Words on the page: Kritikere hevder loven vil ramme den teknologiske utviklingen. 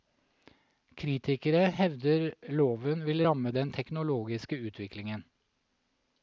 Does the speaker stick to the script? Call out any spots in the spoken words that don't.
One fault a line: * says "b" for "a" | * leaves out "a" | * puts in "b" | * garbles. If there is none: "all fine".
all fine